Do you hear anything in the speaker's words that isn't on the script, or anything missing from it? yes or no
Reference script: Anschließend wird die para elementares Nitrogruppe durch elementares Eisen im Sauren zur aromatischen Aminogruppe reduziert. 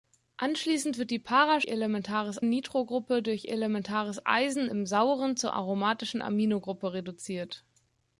no